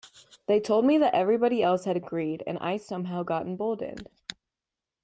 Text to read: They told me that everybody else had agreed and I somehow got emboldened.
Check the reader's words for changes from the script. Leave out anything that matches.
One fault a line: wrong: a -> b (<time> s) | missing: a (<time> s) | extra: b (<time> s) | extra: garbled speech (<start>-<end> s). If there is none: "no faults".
no faults